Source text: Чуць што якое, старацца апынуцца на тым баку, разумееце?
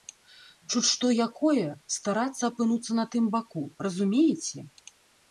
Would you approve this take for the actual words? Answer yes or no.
yes